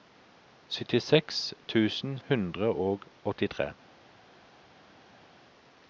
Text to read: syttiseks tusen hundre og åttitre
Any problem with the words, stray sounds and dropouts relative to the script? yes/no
no